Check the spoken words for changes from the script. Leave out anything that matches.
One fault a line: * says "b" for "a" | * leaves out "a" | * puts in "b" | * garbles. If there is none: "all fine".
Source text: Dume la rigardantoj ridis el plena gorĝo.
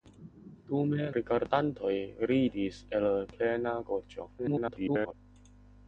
* leaves out "la"
* garbles